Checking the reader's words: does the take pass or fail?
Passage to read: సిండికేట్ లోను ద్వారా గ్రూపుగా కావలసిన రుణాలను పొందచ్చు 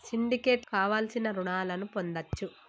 fail